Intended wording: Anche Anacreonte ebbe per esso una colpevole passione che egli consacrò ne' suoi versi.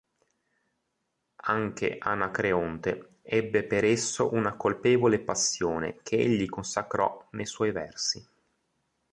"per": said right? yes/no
yes